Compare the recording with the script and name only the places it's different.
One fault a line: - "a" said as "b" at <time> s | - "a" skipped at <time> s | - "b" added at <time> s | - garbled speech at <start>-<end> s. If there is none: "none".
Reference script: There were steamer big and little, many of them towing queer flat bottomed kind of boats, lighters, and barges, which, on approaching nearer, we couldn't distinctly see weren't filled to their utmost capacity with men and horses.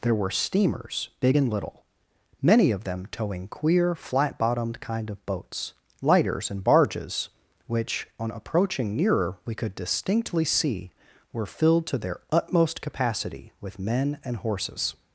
- "steamer" said as "steamers" at 0.3 s
- "couldn't" said as "could" at 9.5 s
- "weren't" said as "were" at 11.3 s